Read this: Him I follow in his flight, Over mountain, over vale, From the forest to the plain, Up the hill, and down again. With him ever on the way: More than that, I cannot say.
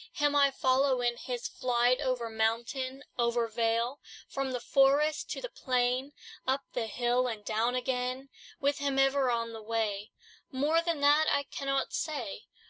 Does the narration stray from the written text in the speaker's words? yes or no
no